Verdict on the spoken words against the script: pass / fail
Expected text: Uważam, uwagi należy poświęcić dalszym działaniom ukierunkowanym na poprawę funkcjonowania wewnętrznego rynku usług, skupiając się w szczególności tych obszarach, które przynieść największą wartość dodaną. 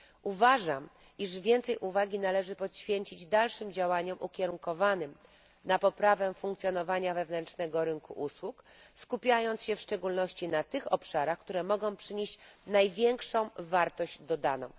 fail